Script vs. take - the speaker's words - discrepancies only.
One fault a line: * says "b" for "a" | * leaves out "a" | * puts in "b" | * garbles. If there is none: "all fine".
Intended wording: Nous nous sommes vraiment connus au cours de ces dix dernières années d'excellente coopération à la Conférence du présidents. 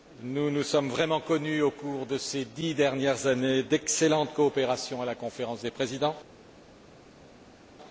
* says "des" for "du"